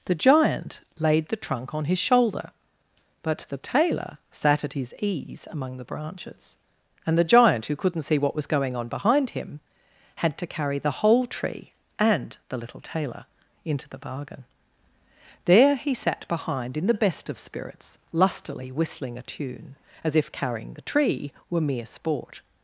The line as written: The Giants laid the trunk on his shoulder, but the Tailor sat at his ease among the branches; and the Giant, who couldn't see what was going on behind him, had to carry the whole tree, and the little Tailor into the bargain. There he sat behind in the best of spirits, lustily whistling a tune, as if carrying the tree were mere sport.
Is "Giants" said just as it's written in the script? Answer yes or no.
no